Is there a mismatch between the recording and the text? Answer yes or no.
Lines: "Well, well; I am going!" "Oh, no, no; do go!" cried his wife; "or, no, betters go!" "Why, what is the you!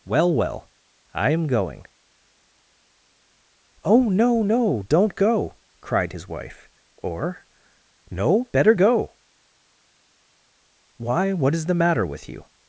yes